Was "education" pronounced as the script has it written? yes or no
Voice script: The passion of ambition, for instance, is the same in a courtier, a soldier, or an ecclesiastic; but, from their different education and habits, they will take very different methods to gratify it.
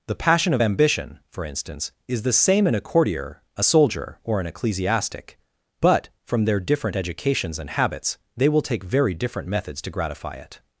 no